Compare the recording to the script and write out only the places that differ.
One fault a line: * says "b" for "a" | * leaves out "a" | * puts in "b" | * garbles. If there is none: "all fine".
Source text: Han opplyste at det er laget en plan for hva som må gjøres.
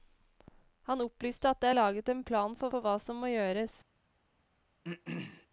* puts in "for"